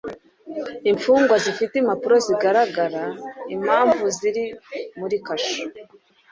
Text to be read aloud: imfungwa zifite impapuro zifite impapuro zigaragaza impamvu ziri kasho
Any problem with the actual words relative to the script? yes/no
yes